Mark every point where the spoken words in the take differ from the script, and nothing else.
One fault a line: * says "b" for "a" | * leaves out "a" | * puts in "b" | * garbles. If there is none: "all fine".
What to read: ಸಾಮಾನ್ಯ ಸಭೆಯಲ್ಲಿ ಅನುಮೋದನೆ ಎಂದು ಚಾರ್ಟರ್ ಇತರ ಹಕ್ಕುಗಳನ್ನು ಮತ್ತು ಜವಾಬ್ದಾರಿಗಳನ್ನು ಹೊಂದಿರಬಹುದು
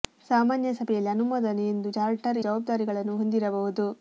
* leaves out "ಇತರ ಹಕ್ಕುಗಳನ್ನು ಮತ್ತು"